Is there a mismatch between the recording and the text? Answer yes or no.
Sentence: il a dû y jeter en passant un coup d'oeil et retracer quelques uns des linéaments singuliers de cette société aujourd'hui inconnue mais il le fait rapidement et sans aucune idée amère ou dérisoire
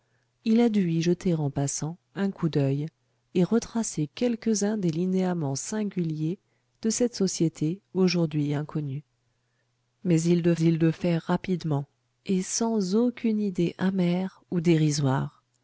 yes